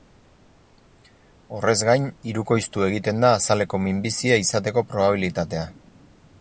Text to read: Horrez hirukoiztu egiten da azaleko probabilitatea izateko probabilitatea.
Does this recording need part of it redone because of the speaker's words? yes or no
yes